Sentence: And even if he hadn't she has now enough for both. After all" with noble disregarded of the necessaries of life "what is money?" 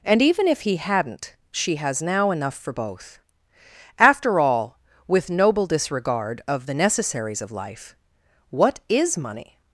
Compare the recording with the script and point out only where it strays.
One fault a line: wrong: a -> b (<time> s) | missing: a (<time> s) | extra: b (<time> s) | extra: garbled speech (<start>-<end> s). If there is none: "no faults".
wrong: disregarded -> disregard (5.7 s)